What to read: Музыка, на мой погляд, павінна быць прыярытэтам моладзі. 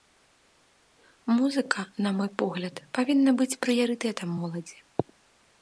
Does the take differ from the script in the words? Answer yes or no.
no